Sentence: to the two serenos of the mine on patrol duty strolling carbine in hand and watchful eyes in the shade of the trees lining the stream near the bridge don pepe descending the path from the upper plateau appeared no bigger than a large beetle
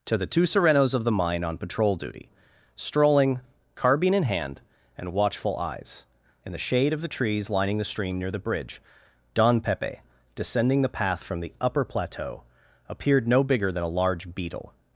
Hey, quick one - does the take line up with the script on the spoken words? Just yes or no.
yes